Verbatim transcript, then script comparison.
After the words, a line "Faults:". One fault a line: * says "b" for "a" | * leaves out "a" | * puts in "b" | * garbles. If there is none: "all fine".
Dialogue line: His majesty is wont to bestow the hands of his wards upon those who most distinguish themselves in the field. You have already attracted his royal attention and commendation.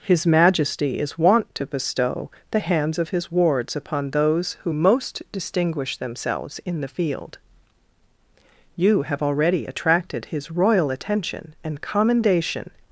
His majesty is wont to bestow the hands of his wards upon those who most distinguish themselves in the field. You have already attracted his royal attention and commendation.
Faults:
all fine